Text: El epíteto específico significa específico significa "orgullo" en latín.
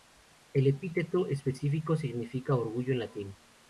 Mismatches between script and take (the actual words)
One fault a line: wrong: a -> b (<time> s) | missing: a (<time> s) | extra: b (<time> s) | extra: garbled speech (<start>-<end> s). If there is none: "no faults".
missing: específico significa (2.5 s)